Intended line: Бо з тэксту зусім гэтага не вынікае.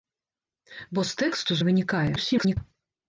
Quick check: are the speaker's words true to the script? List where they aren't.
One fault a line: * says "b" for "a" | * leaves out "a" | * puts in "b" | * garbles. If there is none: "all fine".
* leaves out "зусім гэтага"
* garbles